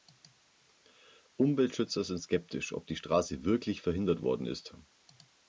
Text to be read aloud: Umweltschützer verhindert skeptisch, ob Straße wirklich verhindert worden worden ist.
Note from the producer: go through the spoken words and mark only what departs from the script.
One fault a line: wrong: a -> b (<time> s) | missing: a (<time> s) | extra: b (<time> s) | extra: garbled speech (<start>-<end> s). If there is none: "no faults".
wrong: verhindert -> sind (2.0 s)
extra: die (2.9 s)
missing: worden (4.5 s)